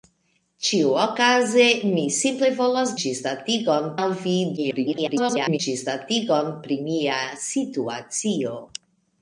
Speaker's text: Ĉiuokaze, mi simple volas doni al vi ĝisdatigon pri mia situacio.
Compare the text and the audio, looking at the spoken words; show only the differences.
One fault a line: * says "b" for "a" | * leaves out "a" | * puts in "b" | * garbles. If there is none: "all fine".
* says "ĝisdatigon" for "doni"
* garbles